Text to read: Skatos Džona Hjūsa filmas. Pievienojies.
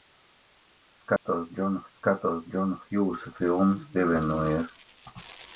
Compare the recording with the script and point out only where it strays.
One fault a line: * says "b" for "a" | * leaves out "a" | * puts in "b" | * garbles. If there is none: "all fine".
* puts in "skatos Džona"